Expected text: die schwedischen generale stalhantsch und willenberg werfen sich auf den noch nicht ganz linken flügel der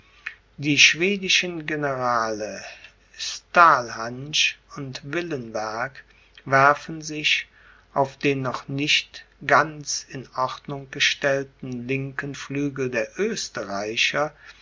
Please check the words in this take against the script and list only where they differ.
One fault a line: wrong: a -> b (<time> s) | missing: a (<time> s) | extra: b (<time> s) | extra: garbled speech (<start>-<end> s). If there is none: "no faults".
extra: in ordnung gestellten (10.1 s)